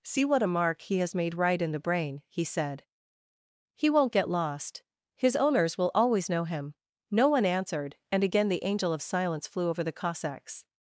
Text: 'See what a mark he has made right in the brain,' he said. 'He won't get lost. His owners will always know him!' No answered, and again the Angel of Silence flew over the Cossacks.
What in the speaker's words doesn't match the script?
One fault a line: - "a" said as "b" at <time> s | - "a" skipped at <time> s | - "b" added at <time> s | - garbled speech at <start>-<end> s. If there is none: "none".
- "one" added at 7.3 s